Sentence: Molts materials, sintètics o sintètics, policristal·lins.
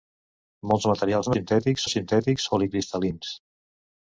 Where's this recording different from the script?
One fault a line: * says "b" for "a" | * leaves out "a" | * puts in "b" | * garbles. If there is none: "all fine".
all fine